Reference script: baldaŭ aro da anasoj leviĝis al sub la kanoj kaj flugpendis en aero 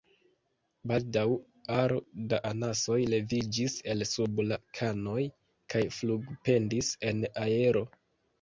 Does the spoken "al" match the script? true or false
false